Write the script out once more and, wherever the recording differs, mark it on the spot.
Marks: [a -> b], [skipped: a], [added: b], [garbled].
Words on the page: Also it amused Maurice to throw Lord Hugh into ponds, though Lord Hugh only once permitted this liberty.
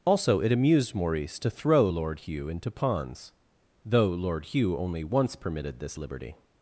Also it amused Maurice to throw Lord Hugh into ponds, though Lord Hugh only once permitted this liberty.